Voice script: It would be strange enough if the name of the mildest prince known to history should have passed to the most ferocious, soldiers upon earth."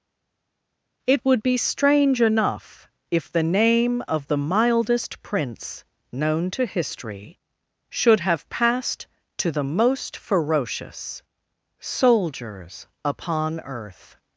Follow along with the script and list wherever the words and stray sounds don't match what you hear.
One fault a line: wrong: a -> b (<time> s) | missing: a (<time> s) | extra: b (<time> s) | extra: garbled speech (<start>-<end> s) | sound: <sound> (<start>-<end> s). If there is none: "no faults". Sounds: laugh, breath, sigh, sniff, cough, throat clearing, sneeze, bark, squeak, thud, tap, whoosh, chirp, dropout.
no faults